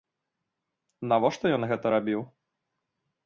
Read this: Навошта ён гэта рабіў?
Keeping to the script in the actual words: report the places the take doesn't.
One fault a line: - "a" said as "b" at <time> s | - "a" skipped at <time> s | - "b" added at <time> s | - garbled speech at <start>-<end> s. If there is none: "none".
none